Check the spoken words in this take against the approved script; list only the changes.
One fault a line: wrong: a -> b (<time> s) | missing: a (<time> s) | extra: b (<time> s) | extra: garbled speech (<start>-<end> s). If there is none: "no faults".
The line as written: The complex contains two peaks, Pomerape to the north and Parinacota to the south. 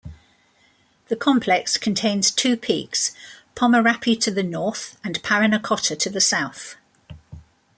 no faults